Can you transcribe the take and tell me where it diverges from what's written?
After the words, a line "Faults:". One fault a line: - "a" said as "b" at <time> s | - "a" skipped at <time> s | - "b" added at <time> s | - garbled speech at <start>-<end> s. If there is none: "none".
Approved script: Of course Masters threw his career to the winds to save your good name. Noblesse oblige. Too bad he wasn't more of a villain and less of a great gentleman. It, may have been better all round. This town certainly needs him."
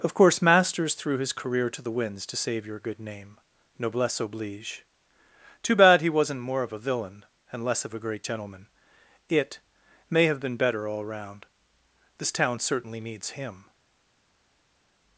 Of course Masters threw his career to the winds to save your good name. Noblesse oblige. Too bad he wasn't more of a villain and less of a great gentleman. It, may have been better all round. This town certainly needs him."
Faults:
none